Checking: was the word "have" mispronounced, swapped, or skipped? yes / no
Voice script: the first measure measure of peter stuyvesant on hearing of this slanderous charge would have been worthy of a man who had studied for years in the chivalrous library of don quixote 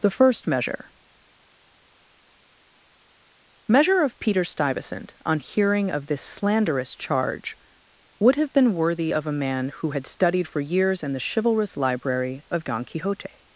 no